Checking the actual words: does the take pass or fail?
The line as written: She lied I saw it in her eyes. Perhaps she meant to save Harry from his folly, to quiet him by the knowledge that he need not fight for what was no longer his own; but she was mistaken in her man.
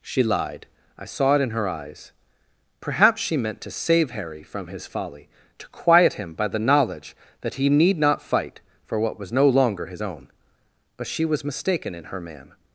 pass